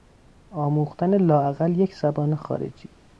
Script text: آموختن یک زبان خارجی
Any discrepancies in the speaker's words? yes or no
yes